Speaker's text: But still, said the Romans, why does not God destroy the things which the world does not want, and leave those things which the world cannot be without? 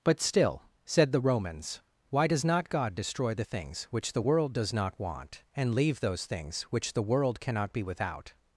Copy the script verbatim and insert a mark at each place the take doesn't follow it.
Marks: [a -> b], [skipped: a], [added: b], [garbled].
But still, said the Romans, why does not God destroy the things which the world does not want, and leave those things which the world cannot be without?